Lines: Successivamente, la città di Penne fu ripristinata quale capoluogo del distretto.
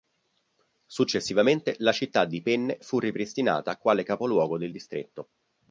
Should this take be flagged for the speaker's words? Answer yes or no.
no